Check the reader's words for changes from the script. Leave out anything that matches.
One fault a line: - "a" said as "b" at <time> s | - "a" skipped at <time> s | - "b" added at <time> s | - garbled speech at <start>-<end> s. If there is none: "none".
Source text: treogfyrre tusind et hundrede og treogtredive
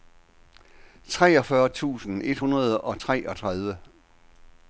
none